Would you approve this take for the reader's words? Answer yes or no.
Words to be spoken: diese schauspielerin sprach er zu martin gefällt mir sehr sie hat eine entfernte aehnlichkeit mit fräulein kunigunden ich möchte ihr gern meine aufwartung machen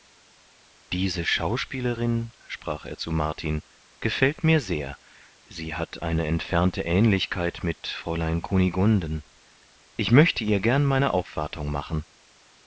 yes